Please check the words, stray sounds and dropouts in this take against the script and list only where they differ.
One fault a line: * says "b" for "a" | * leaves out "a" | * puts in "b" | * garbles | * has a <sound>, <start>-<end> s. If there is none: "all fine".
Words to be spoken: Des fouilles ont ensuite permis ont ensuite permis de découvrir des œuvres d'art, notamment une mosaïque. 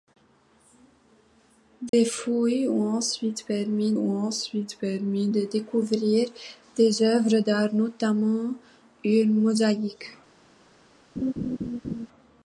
* has a dropout, 1.9-1.9 s
* has a laugh, 11.2-12.1 s